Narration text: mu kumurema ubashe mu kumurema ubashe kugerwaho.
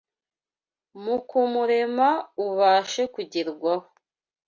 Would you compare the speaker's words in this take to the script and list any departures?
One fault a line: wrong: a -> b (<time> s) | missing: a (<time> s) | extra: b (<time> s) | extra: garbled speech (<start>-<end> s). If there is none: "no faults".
missing: mu kumurema ubashe (3.0 s)